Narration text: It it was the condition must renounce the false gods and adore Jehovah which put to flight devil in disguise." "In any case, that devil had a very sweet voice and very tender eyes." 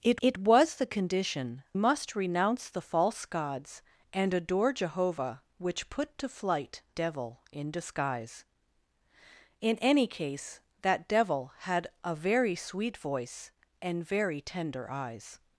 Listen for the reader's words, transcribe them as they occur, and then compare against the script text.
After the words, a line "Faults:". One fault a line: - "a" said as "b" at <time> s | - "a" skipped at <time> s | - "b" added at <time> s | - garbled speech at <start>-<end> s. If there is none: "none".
It it was the condition must renounce the false gods and adore Jehovah which put to flight devil in disguise." "In any case, that devil had a very sweet voice and very tender eyes."
Faults:
none